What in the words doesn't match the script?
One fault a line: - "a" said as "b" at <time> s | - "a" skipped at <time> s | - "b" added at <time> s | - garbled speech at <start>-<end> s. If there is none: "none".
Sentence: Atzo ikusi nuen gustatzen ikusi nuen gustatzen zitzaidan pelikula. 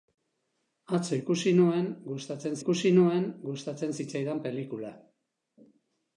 none